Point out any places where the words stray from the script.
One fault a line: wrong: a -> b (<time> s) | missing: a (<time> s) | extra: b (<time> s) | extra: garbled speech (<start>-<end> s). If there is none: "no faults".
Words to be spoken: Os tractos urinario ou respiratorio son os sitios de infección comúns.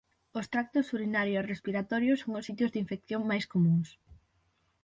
wrong: ou -> e (1.4 s)
extra: máis (3.3 s)